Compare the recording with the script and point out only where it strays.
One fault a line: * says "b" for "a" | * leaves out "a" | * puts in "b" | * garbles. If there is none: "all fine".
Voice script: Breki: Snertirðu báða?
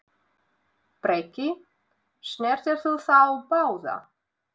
* puts in "þá"